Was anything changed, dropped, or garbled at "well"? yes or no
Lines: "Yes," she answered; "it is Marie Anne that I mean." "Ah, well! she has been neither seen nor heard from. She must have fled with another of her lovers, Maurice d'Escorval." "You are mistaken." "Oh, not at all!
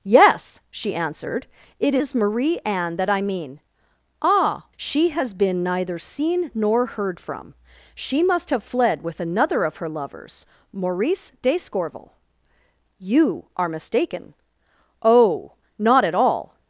yes